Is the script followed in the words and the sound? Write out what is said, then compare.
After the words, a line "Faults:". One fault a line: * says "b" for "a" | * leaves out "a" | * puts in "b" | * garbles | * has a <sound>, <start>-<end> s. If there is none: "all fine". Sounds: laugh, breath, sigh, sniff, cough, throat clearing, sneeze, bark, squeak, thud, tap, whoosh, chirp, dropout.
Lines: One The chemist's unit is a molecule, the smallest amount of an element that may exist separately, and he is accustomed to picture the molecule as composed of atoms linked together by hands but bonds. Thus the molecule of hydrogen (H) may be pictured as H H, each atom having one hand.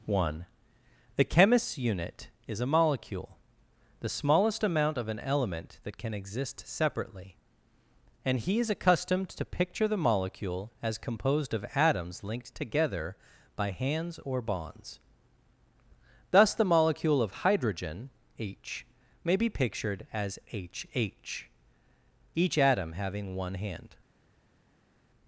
One The chemist's unit is a molecule, the smallest amount of an element that can exist separately, and he is accustomed to picture the molecule as composed of atoms linked together by hands or bonds. Thus the molecule of hydrogen (H) may be pictured as H H, each atom having one hand.
Faults:
* says "can" for "may"
* says "or" for "but"